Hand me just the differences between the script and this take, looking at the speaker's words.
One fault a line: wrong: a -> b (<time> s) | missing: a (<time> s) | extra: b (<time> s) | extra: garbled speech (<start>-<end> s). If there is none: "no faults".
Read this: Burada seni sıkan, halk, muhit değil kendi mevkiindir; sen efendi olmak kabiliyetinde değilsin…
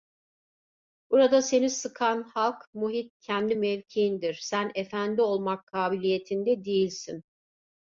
missing: değil (3.2 s)